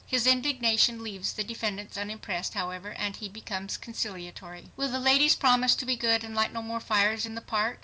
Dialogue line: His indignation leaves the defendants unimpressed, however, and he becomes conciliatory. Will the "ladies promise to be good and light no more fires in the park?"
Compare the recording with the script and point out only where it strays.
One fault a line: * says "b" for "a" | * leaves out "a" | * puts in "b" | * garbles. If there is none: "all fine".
all fine